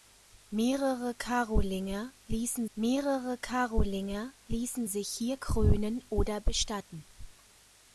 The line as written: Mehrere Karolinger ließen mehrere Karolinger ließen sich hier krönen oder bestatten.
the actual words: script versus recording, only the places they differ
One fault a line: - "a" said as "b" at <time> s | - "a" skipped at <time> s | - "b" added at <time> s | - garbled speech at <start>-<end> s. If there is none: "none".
none